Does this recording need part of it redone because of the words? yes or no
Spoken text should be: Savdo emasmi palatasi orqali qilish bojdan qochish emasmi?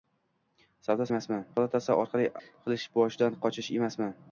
no